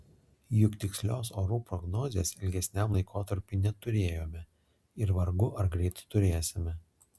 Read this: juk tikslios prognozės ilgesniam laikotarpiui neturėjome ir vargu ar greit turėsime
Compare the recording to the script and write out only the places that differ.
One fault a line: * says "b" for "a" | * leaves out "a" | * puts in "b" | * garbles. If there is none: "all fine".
* puts in "orų"